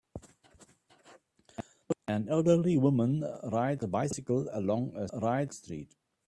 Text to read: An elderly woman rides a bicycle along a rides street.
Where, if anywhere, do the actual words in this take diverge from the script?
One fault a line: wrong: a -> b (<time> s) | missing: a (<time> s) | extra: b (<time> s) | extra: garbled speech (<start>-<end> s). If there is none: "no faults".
no faults